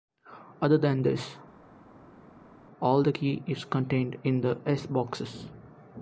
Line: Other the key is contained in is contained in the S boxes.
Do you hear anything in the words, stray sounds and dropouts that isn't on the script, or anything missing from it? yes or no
yes